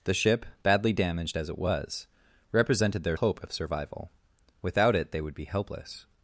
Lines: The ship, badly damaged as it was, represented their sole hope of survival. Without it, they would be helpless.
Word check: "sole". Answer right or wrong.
wrong